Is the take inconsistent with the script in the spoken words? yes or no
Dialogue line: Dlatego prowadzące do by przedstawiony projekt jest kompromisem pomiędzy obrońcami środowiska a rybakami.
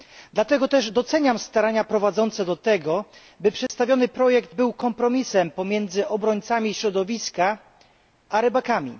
yes